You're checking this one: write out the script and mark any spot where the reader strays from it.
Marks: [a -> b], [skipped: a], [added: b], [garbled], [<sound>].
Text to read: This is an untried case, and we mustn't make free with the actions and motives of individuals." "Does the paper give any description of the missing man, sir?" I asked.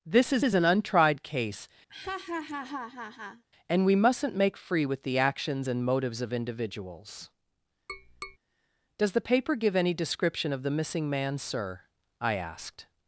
This is [added: is] an untried case, [laugh] and we mustn't make free with the actions and motives of individuals." [tap] "Does the paper give any description of the missing man, sir?" I asked.